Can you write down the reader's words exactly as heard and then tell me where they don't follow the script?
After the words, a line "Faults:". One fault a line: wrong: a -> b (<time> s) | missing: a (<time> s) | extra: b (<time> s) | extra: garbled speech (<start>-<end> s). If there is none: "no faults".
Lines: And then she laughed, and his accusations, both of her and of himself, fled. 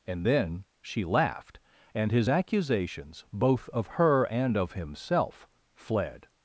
And then she laughed, and his accusations, both of her and of himself, fled.
Faults:
no faults